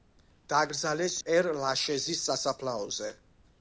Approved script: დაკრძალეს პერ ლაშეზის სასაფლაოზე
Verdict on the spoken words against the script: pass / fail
pass